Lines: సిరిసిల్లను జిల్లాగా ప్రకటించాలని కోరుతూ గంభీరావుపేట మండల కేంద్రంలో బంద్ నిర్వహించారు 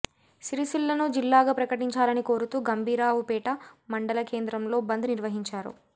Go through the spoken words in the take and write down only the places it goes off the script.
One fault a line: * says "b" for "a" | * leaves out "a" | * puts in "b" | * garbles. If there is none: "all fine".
all fine